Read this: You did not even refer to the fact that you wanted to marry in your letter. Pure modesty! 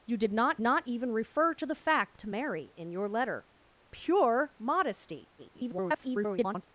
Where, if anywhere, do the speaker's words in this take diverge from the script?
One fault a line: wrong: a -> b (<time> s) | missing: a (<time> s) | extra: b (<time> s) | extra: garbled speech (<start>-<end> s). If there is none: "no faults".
extra: not (0.6 s)
missing: that you wanted (2.2 s)
extra: garbled speech (5.4-6.6 s)